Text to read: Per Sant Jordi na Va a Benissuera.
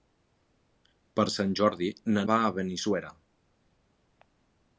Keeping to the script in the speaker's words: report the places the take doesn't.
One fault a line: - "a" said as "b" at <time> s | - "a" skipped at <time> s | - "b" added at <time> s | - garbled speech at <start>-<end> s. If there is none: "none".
none